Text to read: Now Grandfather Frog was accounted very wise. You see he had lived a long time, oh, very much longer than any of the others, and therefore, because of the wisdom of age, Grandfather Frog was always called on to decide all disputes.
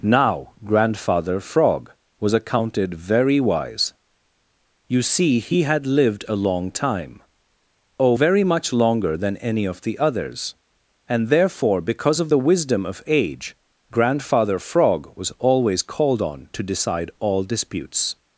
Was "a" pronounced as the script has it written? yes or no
yes